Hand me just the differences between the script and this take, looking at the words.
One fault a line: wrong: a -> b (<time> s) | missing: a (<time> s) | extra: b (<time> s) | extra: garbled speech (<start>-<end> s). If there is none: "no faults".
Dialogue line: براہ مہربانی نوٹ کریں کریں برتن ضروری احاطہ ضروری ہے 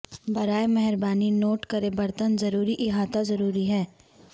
missing: کریں (1.9 s)